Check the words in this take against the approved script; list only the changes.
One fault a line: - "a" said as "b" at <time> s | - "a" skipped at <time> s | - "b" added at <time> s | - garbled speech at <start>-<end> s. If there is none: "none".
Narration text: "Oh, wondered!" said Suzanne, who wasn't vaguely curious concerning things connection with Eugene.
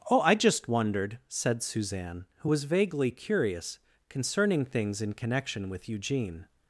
- "I just" added at 0.2 s
- "wasn't" said as "was" at 2.5 s
- "in" added at 5.0 s